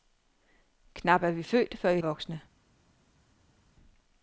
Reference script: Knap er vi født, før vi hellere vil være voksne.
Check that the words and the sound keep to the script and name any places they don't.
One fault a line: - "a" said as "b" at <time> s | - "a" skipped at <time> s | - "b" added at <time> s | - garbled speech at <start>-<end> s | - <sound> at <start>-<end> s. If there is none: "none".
- "hellere vil være" skipped at 2.0 s